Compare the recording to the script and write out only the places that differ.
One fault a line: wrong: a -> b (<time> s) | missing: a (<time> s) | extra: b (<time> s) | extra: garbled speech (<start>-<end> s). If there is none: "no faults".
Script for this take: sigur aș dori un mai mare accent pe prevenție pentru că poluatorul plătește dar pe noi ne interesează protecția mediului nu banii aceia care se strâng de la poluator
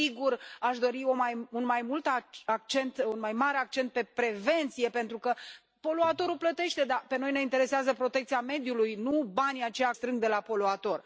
missing: care se (9.9 s)